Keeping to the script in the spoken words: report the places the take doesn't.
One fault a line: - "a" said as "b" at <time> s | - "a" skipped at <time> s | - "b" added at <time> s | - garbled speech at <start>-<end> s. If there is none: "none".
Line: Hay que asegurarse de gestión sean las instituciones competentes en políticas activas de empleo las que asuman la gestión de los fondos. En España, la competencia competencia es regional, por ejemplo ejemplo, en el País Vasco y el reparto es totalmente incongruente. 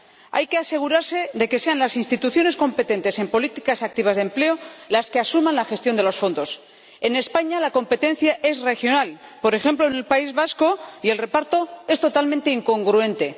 - "gestión" said as "que" at 1.5 s
- "competencia" skipped at 8.4 s
- "ejemplo" skipped at 9.9 s